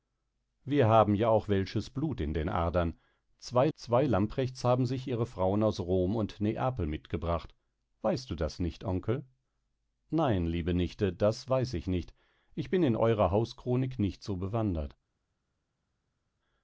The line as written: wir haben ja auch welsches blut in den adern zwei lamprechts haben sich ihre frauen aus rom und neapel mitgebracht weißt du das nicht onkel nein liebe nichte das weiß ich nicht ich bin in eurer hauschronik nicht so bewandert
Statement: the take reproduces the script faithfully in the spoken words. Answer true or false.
false